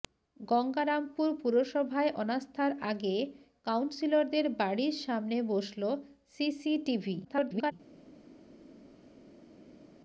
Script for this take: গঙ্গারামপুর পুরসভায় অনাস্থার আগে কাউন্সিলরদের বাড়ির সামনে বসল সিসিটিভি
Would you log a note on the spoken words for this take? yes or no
yes